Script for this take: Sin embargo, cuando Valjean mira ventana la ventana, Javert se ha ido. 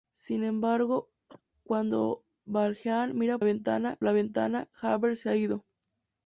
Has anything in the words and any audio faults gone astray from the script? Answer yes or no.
yes